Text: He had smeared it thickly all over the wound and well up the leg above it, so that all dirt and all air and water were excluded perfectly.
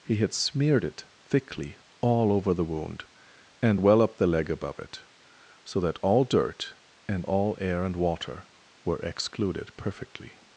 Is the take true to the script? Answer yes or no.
yes